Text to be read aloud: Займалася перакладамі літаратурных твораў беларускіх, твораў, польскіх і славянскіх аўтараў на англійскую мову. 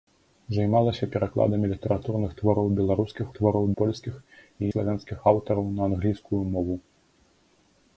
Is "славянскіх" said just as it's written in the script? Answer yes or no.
yes